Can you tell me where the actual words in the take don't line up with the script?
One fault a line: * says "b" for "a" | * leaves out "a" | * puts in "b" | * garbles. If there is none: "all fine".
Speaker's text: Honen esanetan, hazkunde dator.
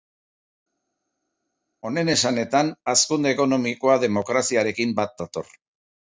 * puts in "ekonomikoa demokraziarekin bat"